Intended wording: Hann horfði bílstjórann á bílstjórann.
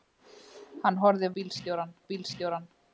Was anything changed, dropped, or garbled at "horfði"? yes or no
no